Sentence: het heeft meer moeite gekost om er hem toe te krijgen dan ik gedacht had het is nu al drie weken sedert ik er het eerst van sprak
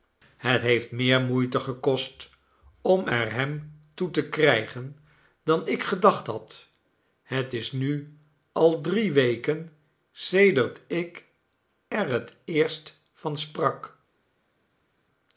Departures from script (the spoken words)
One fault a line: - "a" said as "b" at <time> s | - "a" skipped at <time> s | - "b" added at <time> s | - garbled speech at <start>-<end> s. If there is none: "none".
none